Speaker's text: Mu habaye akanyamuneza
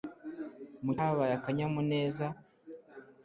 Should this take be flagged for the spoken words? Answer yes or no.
no